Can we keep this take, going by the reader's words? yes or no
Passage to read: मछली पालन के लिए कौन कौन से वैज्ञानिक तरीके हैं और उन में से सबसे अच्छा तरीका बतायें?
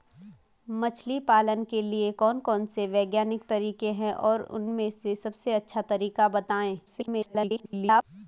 no